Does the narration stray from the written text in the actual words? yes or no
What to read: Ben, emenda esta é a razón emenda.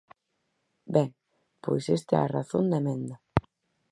yes